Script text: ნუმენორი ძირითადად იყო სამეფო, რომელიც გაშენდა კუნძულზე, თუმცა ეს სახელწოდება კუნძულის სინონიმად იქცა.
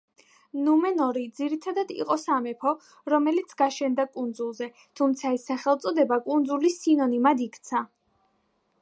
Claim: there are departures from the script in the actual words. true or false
false